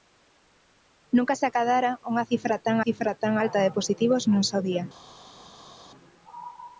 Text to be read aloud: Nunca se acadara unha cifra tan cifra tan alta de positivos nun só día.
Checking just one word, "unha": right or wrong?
right